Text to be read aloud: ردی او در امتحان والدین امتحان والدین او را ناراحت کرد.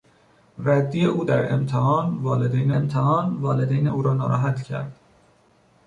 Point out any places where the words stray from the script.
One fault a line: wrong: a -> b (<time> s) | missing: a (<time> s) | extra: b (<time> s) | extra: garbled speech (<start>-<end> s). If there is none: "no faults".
no faults